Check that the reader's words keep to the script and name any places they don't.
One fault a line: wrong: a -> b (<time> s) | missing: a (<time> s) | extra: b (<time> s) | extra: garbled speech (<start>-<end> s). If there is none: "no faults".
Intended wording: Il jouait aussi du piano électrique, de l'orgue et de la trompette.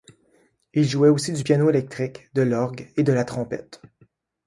no faults